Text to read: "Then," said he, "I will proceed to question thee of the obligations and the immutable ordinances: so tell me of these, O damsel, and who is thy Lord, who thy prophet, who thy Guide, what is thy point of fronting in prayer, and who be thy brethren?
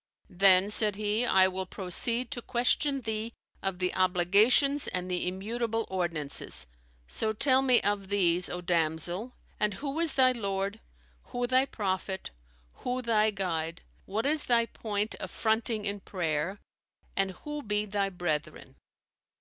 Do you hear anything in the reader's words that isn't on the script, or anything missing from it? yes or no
no